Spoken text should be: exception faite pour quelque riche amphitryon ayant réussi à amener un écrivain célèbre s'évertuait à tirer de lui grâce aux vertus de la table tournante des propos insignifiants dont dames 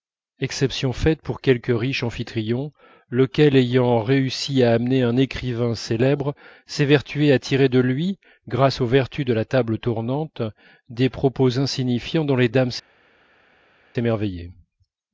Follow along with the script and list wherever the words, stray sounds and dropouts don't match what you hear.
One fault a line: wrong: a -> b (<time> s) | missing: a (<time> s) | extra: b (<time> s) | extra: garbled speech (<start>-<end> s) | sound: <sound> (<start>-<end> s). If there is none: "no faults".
extra: lequel (3.1 s)
extra: les (12.4 s)